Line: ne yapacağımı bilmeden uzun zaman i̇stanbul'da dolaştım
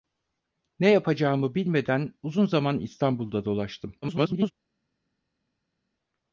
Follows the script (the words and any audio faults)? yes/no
no